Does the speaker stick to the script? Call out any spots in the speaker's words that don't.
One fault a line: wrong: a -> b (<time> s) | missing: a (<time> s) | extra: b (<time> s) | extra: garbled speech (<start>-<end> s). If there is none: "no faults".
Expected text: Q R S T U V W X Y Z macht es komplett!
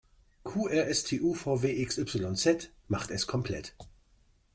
no faults